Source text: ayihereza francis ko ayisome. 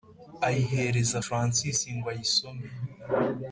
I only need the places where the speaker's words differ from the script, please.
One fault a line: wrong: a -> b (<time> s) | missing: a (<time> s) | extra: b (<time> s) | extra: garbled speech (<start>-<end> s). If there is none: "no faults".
wrong: ko -> ngo (1.9 s)